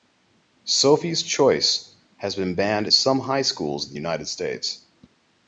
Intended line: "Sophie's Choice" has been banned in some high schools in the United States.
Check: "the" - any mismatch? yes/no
no